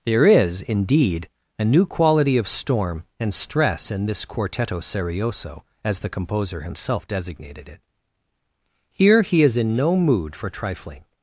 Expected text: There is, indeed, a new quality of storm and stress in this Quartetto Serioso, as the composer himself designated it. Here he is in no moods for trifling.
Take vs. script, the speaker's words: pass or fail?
fail